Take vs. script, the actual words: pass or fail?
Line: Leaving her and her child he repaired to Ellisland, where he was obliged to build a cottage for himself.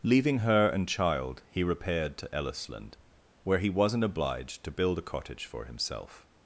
fail